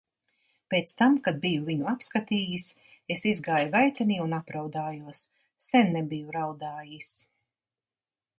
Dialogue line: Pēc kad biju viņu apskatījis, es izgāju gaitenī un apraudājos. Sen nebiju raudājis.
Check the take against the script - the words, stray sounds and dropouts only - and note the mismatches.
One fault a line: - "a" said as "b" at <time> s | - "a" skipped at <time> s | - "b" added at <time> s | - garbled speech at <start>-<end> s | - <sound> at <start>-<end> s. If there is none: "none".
- "tam" added at 1.0 s